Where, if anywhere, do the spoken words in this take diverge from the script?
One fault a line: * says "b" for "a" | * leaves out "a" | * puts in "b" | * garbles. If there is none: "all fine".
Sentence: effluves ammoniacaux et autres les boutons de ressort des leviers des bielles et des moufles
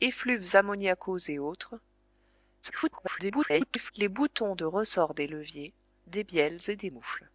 * garbles